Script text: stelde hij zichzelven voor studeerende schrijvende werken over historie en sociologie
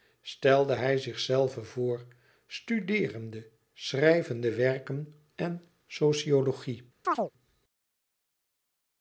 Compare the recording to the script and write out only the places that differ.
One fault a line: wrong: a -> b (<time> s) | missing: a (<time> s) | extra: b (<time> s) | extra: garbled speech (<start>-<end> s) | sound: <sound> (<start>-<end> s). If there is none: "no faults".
missing: over historie (5.1 s)
sound: chirp (7.0-7.3 s)